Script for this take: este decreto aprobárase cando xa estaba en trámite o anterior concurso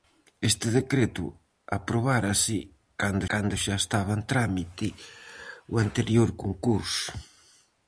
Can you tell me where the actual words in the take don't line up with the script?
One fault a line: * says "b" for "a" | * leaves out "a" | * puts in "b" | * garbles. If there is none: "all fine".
* puts in "cando"